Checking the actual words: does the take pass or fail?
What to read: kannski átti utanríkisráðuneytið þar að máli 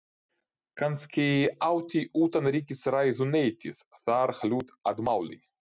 fail